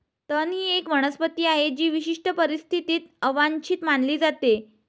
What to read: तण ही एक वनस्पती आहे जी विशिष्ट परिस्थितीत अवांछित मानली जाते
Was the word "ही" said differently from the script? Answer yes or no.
no